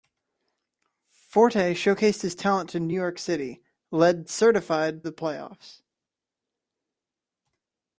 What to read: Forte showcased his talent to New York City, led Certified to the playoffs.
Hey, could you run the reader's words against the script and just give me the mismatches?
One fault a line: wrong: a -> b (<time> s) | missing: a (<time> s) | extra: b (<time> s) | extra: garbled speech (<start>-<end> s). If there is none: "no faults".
missing: to (5.0 s)